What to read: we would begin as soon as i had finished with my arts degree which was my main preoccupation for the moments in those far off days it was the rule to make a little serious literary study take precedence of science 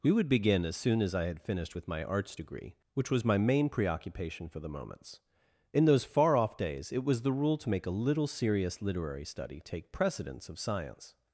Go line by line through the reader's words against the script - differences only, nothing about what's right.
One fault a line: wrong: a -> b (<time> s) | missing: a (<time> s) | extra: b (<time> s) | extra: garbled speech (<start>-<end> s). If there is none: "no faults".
no faults